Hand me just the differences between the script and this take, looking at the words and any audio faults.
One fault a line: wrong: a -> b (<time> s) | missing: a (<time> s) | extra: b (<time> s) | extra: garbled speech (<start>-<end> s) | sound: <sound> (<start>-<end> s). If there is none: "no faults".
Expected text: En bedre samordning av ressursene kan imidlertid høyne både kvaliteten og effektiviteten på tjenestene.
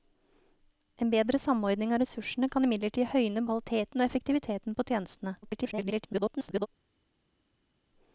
missing: både (3.5 s)
extra: garbled speech (5.4-6.7 s)